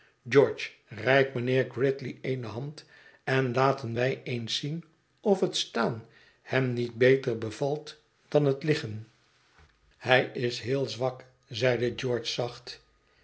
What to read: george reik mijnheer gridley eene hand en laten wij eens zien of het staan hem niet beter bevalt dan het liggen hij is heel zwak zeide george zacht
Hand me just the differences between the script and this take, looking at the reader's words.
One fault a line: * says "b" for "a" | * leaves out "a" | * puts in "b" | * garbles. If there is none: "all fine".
all fine